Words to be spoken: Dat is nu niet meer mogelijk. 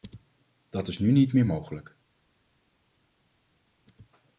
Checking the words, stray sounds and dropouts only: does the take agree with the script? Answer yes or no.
yes